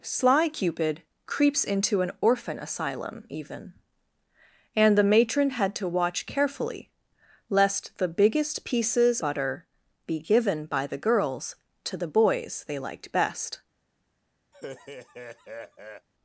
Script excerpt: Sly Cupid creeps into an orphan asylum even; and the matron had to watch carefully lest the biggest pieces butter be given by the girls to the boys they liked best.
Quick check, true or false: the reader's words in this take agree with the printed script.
true